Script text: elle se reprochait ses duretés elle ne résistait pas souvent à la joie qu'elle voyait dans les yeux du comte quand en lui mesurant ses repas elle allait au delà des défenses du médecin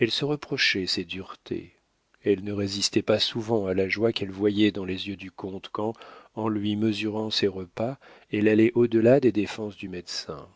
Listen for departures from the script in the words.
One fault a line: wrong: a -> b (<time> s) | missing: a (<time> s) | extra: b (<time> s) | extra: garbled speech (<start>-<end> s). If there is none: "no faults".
no faults